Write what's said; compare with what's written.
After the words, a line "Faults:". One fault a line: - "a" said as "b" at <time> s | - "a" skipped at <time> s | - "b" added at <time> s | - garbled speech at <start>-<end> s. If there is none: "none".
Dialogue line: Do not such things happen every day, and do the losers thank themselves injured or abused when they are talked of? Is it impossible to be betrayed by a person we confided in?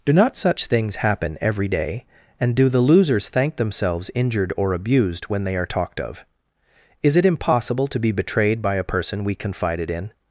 Do not such things happen every day, and do the losers thank themselves injured or abused when they are talked of? Is it impossible to be betrayed by a person we confided in?
Faults:
none